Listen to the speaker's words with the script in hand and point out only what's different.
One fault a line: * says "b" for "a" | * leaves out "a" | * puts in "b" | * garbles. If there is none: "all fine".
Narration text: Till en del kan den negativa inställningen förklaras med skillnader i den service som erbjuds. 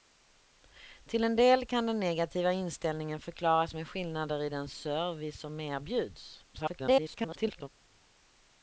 * garbles